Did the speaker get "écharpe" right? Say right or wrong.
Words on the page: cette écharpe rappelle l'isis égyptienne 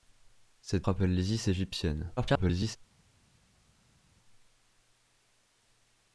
wrong